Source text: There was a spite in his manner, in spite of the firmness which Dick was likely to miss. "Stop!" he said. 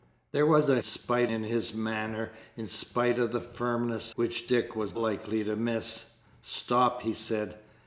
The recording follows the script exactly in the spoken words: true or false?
true